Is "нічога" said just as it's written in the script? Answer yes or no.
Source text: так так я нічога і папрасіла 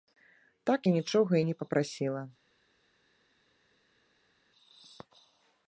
yes